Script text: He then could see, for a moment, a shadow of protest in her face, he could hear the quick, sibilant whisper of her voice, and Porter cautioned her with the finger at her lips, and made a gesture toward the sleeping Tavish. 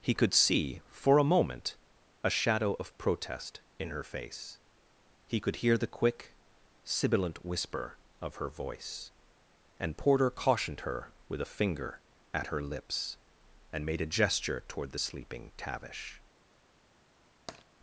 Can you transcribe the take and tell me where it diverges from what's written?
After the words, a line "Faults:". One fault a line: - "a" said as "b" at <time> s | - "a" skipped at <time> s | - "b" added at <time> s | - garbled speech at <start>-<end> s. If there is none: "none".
He could see, for a moment, a shadow of protest in her face, he could hear the quick, sibilant whisper of her voice, and Porter cautioned her with a finger at her lips, and made a gesture toward the sleeping Tavish.
Faults:
- "then" skipped at 0.1 s
- "the" said as "a" at 11.4 s